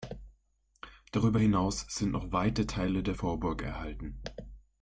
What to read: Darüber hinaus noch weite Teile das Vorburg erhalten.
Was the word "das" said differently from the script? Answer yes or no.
yes